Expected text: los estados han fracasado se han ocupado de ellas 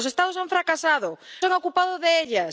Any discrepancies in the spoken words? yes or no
no